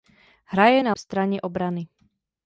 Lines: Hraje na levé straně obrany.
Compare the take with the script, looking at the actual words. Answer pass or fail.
fail